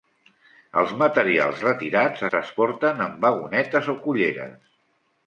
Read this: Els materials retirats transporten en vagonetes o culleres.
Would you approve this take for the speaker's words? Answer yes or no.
yes